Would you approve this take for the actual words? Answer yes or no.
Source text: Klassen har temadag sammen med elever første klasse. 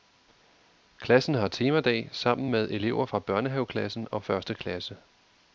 no